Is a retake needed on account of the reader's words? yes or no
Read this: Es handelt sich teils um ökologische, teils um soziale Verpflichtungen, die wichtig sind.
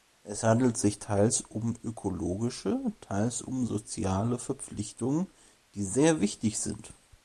yes